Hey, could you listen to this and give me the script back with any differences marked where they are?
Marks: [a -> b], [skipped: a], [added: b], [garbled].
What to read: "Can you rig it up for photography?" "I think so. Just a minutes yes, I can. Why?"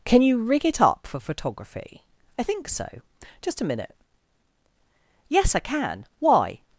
"Can you rig it up for photography?" "I think so. Just a [minutes -> minute] yes, I can. Why?"